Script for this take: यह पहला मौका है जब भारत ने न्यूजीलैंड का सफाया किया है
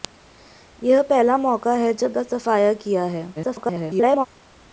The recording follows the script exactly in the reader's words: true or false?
false